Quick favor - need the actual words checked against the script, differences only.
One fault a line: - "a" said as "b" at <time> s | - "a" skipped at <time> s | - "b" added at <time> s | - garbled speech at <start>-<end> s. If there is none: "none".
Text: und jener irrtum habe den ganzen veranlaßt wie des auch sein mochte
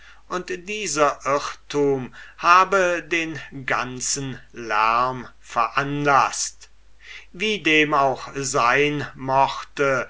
- "jener" said as "dieser" at 0.7 s
- "lärm" added at 4.5 s
- "des" said as "dem" at 7.6 s